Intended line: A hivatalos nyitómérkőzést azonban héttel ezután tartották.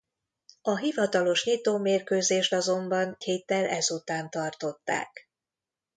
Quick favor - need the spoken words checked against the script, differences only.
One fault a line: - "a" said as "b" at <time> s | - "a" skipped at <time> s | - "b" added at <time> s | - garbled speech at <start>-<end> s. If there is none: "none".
none